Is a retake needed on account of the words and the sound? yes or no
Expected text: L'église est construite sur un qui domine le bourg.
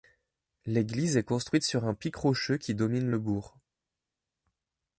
yes